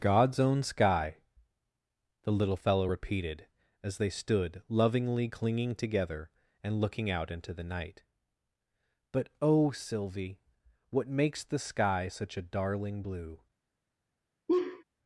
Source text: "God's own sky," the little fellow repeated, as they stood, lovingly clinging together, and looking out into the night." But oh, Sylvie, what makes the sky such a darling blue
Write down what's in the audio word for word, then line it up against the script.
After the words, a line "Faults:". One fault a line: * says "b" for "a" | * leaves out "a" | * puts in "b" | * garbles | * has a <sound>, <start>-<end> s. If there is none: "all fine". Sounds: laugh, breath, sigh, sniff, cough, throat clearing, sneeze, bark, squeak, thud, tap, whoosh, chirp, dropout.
"God's own sky," the little fellow repeated, as they stood, lovingly clinging together, and looking out into the night." But oh, Sylvie, what makes the sky such a darling blue
Faults:
* has a laugh, 14.5-14.8 s